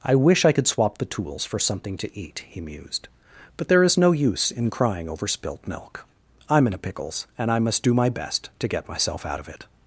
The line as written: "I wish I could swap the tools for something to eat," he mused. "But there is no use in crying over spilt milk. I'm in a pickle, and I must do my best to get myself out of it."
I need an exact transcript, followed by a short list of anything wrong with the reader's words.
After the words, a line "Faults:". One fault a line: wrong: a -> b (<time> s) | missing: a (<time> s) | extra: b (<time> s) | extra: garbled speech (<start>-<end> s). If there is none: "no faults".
"I wish I could swap the tools for something to eat," he mused. "But there is no use in crying over spilt milk. I'm in a pickles, and I must do my best to get myself out of it."
Faults:
wrong: pickle -> pickles (6.8 s)